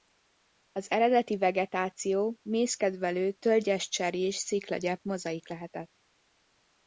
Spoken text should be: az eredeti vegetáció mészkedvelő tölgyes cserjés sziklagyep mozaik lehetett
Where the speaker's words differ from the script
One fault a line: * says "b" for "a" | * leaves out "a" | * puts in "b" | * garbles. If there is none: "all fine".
all fine